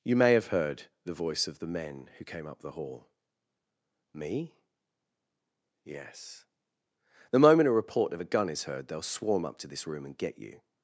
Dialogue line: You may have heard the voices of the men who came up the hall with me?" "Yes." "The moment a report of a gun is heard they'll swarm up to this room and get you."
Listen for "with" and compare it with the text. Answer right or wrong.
wrong